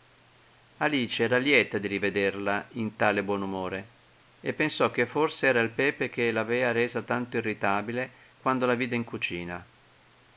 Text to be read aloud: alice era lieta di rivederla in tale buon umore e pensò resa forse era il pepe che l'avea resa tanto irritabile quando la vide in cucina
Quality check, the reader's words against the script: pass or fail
fail